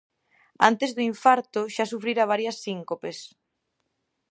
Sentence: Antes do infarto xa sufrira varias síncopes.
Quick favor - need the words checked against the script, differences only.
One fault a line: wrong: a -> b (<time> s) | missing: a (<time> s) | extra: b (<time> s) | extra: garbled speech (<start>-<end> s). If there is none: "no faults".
no faults